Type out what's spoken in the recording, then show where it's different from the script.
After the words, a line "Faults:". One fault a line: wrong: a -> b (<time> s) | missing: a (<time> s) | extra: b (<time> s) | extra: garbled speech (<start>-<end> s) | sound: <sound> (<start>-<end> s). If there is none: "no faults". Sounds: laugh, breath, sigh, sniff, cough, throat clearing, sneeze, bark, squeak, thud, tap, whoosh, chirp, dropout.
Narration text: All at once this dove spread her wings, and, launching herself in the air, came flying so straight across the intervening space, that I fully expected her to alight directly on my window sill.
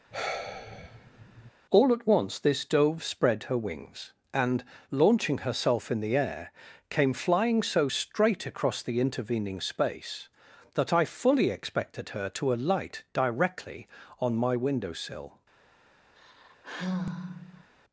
All at once this dove spread her wings, and, launching herself in the air, came flying so straight across the intervening space, that I fully expected her to alight directly on my window sill.
Faults:
sound: sigh (0.1-1.5 s)
sound: sigh (16.2-17.7 s)